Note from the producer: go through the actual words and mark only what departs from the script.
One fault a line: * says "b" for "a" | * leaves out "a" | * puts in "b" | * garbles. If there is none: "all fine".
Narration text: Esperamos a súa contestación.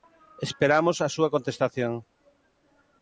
all fine